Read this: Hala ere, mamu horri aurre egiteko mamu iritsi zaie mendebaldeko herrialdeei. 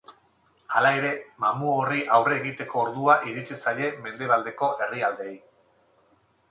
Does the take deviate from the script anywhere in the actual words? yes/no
yes